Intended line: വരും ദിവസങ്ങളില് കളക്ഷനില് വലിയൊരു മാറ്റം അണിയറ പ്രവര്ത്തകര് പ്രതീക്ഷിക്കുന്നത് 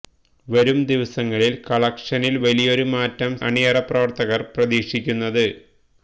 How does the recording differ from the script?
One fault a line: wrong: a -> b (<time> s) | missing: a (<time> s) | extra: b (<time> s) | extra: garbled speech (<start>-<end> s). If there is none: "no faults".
no faults